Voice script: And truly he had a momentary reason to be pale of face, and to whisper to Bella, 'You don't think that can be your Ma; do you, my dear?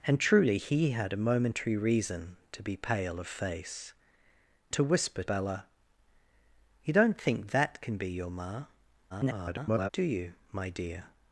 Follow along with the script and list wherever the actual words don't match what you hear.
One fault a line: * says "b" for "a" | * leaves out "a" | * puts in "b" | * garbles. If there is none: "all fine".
* leaves out "and"
* leaves out "to"
* garbles